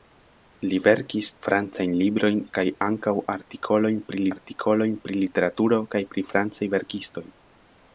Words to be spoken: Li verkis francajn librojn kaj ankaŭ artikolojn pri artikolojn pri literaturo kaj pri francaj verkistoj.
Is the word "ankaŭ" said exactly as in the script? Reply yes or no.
yes